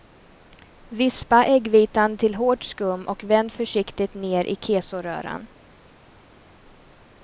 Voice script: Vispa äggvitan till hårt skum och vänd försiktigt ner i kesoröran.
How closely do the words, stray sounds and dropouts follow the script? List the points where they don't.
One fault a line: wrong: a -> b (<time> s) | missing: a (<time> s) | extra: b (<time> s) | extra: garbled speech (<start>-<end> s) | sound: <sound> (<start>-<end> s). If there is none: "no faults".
no faults